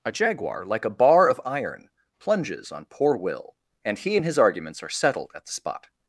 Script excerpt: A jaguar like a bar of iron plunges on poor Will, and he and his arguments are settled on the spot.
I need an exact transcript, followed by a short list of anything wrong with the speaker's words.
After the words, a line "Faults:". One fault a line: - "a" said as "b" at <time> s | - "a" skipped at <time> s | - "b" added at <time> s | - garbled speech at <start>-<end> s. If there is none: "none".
A jaguar like a bar of iron plunges on poor Will, and he and his arguments are settled at the spot.
Faults:
- "on" said as "at" at 5.3 s